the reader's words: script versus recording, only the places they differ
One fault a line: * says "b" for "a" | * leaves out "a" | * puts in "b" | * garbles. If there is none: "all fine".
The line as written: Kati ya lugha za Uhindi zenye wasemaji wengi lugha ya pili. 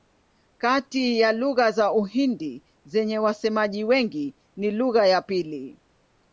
* puts in "ni"